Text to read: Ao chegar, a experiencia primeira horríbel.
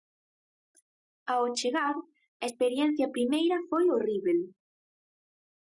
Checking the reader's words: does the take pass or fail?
fail